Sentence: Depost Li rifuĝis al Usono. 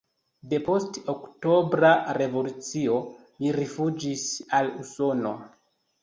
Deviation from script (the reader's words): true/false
true